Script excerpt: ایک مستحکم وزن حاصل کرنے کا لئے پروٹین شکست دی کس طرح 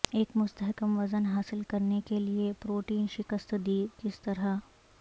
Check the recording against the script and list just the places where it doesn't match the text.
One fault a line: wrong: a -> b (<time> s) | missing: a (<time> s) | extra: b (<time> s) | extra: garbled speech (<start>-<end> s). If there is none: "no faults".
wrong: کا -> کے (2.0 s)